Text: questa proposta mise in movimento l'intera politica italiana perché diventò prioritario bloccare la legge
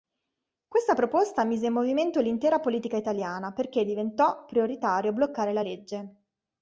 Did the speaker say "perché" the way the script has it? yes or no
yes